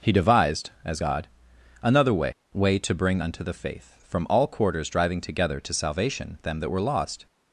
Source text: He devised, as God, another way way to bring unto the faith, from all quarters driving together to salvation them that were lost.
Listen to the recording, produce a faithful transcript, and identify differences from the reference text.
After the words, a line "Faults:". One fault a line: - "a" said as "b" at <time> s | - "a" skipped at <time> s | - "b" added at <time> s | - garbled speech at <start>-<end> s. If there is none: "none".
He devised, as God, another way way to bring unto the faith, from all quarters driving together to salvation them that were lost.
Faults:
none